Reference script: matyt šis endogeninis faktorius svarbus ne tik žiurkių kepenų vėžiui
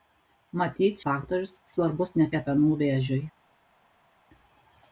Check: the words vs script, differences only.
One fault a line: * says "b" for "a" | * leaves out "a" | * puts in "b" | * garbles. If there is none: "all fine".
* leaves out "šis endogeninis"
* leaves out "tik žiurkių"